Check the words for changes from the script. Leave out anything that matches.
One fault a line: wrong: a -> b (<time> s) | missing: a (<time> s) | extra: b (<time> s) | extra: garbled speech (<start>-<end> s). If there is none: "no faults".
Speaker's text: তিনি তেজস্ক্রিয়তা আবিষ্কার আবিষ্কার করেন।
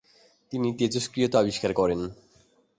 missing: আবিষ্কার (1.7 s)